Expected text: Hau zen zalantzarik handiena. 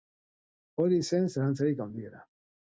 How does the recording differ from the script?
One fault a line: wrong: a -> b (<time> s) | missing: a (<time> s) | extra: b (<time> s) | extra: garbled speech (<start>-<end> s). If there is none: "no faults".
wrong: Hau -> Hori (0.8 s)